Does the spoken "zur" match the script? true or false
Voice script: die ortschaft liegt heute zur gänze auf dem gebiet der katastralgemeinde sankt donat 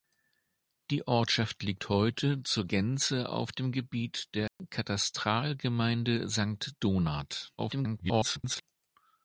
true